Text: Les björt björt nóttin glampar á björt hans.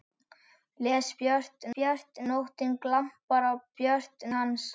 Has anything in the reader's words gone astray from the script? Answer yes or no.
no